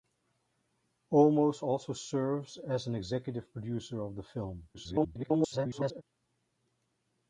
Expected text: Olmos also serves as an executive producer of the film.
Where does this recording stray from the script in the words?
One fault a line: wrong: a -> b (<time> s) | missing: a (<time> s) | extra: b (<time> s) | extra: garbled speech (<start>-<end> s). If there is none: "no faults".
extra: garbled speech (4.7-6.0 s)